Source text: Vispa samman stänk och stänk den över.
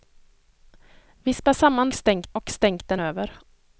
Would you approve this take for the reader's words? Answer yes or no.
yes